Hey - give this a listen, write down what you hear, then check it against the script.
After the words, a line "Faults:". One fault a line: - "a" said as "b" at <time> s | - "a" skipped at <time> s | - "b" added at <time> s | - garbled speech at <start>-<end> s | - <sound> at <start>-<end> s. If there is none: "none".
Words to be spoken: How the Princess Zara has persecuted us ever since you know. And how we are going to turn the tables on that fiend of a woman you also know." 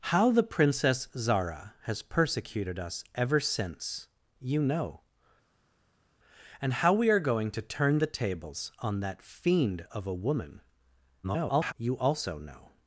How the Princess Zara has persecuted us ever since you know. And how we are going to turn the tables on that fiend of a woman [garbled] you also know."
Faults:
- garbled speech at 11.2-11.7 s